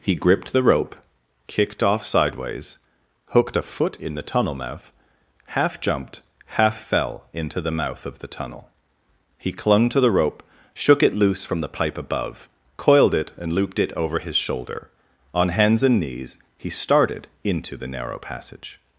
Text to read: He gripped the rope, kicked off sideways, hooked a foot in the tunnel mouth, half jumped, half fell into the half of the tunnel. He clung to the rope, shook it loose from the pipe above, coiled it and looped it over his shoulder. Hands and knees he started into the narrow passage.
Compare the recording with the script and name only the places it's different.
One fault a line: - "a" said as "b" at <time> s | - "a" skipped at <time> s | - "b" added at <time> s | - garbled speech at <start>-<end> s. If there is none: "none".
- "half" said as "mouth" at 7.7 s
- "On" added at 15.3 s